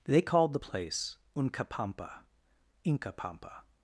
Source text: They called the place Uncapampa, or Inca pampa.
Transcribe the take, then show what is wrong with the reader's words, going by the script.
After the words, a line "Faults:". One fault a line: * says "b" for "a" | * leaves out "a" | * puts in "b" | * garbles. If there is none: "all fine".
They called the place Uncapampa, Inca pampa.
Faults:
* leaves out "or"